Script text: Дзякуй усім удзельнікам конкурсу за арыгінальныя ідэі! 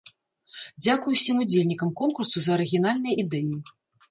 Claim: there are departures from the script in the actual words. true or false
false